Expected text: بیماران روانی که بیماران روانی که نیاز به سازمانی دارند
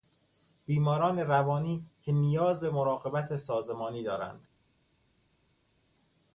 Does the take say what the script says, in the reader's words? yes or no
no